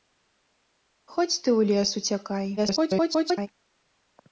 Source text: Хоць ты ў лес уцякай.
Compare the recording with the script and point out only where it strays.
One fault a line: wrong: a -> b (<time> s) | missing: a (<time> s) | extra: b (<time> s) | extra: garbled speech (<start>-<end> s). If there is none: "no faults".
extra: garbled speech (2.6-3.5 s)